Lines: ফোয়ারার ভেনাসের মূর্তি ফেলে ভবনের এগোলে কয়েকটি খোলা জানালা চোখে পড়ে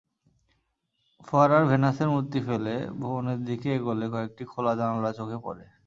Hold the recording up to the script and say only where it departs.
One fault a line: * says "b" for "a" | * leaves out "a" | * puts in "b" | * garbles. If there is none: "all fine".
* puts in "দিকে"